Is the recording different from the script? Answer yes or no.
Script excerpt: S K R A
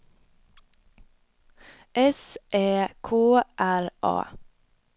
yes